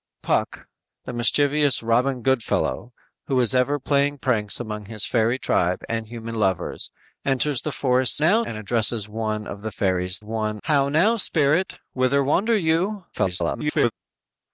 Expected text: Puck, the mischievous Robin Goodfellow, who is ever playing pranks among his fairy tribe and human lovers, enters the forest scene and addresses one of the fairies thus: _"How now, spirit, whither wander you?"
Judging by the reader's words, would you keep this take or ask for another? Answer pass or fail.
fail